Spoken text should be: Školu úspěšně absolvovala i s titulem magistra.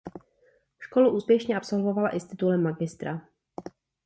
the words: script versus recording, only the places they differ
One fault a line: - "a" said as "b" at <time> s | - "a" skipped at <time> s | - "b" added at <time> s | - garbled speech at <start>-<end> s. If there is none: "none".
none